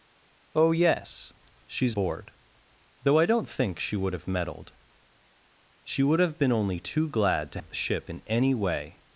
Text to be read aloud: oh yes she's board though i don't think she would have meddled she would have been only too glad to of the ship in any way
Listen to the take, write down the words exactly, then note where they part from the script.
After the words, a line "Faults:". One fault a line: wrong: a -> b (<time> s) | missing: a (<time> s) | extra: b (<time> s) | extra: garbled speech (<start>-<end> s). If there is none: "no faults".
oh yes she's board though i don't think she would have meddled she would have been only too glad to of the ship in any way
Faults:
no faults